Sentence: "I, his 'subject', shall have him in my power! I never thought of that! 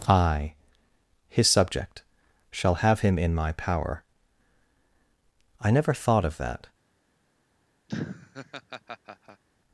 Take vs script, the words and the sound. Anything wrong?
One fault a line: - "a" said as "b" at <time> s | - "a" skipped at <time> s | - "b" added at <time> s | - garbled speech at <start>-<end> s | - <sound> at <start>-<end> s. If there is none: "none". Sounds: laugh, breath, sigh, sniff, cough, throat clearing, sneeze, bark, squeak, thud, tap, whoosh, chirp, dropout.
- laugh at 7.9-9.4 s